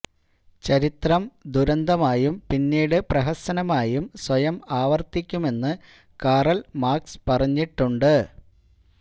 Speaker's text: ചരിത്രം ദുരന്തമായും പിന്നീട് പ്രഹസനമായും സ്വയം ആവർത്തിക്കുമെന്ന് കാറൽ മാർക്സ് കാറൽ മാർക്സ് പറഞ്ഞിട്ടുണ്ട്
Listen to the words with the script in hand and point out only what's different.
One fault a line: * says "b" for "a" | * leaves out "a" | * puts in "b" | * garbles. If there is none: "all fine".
* leaves out "കാറൽ മാർക്സ്"